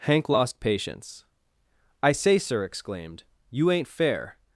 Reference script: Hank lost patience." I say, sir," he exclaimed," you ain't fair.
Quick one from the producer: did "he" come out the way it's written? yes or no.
no